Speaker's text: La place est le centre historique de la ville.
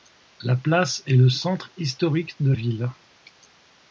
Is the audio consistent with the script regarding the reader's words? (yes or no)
no